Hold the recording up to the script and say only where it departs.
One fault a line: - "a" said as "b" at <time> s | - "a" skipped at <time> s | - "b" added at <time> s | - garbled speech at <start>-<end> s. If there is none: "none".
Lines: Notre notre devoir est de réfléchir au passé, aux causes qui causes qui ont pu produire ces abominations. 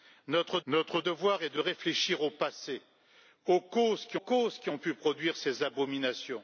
none